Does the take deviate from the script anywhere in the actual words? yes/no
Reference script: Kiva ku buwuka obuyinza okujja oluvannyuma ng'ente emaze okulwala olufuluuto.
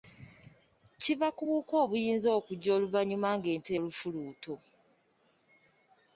yes